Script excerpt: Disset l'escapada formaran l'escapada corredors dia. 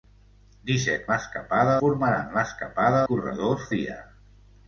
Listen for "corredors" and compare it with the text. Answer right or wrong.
right